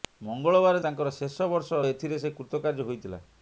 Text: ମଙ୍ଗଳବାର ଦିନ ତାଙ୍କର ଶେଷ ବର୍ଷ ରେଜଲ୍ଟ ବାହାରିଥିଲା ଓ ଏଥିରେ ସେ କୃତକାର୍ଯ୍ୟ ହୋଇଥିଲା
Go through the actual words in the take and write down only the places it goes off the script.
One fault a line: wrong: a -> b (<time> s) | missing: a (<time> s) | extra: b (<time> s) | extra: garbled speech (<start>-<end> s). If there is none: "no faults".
missing: ଦିନ (0.8 s)
missing: ରେଜଲ୍ଟ ବାହାରିଥିଲା ଓ (1.8 s)